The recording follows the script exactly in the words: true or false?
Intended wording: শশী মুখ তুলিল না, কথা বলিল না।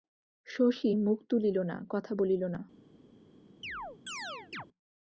true